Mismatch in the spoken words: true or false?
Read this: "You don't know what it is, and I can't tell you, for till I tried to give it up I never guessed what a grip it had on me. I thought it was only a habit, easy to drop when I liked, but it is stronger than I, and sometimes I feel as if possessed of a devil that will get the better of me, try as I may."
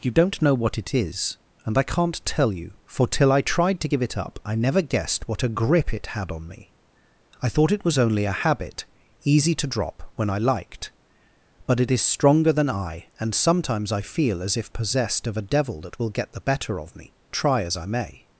false